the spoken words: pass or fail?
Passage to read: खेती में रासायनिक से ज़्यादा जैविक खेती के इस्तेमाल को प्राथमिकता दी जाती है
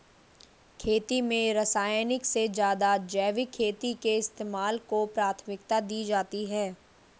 pass